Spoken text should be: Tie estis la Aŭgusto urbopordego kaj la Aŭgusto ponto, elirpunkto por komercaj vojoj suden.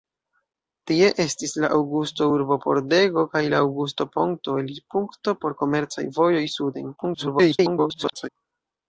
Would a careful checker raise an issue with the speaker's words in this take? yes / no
yes